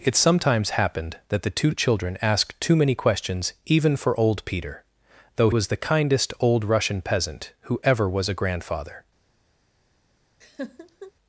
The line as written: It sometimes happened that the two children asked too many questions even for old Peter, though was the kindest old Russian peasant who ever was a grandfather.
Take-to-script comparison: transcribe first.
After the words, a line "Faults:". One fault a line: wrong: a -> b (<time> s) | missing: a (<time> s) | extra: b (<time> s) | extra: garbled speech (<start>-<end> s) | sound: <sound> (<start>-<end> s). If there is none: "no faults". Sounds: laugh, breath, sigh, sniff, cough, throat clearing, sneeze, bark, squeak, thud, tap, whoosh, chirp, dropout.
It sometimes happened that the two children asked too many questions even for old Peter, though was the kindest old Russian peasant who ever was a grandfather.
Faults:
sound: laugh (10.4-11.1 s)